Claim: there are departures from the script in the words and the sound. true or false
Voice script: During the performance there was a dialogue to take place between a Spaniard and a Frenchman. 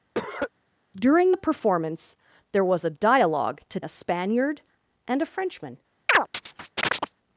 true